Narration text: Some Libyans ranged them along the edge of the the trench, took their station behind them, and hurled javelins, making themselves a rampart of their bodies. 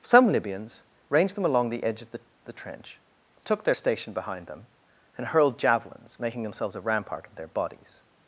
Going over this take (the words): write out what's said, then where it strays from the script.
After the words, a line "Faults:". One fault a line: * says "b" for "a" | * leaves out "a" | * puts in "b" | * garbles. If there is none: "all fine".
Some Libyans ranged them along the edge of the the trench, took their station behind them, and hurled javelins, making themselves a rampart of their bodies.
Faults:
all fine